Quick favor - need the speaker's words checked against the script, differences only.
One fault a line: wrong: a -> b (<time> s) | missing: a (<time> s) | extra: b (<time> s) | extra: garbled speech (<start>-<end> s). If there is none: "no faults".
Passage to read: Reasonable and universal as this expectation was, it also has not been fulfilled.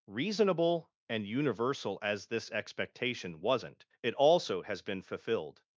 wrong: was -> wasn't (3.4 s)
missing: not (4.8 s)